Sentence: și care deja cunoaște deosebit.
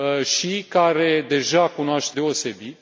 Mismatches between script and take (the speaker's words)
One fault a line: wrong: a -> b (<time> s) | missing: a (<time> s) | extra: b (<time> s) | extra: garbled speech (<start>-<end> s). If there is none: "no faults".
no faults